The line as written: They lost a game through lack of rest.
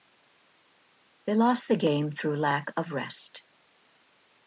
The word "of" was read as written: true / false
true